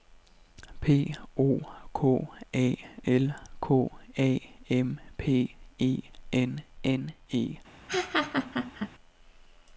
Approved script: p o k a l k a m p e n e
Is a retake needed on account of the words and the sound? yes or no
yes